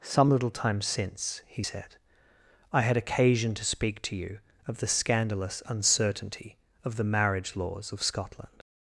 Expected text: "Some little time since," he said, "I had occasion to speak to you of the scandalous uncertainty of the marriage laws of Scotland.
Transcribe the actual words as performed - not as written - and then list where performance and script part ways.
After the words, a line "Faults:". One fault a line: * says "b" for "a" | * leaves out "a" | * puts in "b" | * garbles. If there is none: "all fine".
"Some little time since," he said, "I had occasion to speak to you of the scandalous uncertainty of the marriage laws of Scotland.
Faults:
all fine